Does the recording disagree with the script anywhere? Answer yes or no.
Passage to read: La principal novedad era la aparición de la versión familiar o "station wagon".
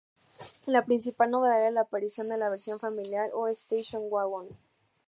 no